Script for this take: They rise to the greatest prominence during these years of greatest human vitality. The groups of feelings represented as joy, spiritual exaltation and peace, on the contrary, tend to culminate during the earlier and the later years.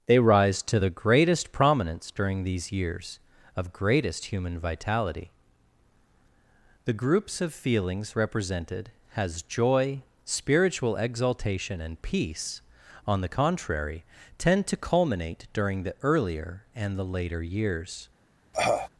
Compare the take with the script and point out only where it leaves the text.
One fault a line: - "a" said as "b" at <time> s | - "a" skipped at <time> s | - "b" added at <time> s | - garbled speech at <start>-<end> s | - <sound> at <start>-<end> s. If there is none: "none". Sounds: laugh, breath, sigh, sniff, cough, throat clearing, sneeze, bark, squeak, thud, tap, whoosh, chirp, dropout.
- "as" said as "has" at 9.1 s
- cough at 18.5-18.9 s